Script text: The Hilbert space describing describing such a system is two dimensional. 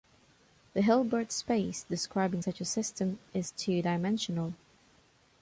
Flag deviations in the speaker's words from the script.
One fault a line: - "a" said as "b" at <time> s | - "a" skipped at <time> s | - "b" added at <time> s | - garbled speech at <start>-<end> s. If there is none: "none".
- "describing" skipped at 2.4 s